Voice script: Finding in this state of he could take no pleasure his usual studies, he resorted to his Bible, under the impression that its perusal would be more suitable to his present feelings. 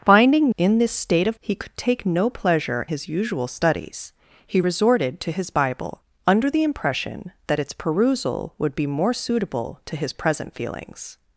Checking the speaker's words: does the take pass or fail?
pass